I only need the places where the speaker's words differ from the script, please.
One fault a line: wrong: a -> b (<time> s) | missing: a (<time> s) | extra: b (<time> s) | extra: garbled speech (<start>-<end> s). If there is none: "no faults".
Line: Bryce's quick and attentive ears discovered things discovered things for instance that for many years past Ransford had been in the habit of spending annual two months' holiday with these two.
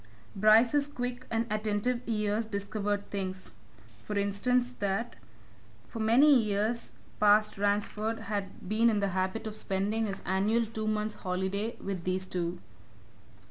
missing: discovered things (3.5 s)
extra: his (10.1 s)